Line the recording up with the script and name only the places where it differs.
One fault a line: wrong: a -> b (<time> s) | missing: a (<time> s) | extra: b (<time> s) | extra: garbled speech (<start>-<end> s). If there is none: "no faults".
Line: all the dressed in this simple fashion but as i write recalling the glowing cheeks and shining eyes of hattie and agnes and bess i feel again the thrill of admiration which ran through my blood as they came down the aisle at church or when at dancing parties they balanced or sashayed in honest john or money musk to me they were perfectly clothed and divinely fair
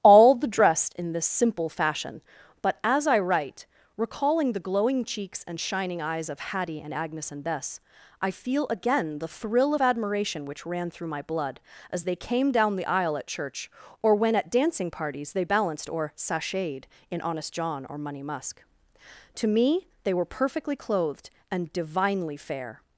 no faults